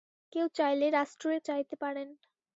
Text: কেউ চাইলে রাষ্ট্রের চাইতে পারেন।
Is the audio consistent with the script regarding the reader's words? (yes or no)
yes